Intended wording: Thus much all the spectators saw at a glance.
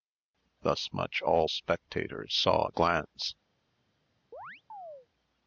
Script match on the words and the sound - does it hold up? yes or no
no